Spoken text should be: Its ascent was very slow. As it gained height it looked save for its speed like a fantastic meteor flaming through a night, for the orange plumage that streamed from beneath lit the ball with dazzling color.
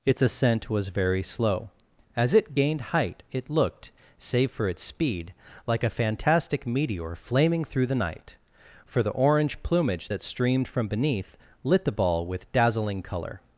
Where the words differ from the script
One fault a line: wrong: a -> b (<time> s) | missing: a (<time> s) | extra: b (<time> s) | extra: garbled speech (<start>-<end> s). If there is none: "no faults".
wrong: a -> the (7.9 s)